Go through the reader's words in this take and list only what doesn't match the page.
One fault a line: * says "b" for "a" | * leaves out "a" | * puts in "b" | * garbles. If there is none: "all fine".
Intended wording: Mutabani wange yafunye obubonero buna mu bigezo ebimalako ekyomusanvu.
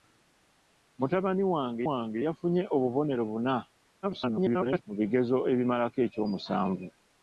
* puts in "wange"
* garbles